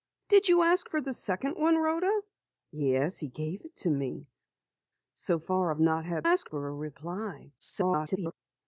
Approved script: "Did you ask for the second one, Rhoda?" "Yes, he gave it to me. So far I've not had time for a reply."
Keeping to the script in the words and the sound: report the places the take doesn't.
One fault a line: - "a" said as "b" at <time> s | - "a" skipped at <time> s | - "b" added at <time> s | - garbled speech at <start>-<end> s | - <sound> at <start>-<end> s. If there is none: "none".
- "time" said as "ask" at 6.2 s
- garbled speech at 7.6-8.3 s